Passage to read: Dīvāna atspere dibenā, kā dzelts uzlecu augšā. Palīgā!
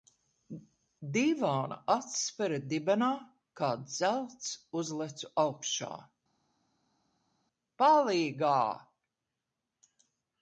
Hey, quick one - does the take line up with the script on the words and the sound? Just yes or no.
yes